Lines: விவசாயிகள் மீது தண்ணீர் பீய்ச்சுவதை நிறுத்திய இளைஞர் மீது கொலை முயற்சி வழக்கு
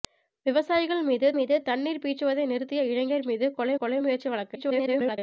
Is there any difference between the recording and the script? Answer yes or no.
yes